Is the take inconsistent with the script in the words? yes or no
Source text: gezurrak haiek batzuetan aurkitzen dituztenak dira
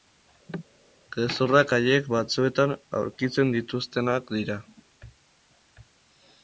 no